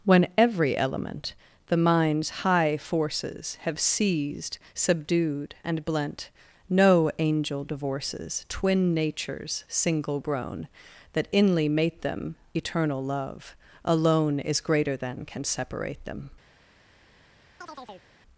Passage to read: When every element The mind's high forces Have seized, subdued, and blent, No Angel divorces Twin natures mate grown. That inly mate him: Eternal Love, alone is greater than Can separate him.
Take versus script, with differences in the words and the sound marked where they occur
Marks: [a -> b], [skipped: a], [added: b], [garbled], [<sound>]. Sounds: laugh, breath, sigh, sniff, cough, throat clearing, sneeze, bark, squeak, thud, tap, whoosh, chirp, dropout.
When every element The mind's high forces Have seized, subdued, and blent, No Angel divorces Twin natures [mate -> single] grown. That inly mate [him: -> them] Eternal Love, alone is greater than Can separate [him. -> them] [chirp]